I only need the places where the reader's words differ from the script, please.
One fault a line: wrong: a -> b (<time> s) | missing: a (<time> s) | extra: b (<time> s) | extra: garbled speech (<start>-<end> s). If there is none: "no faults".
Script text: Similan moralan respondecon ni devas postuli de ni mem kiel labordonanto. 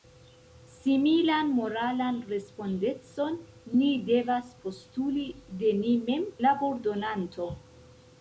missing: kiel (6.3 s)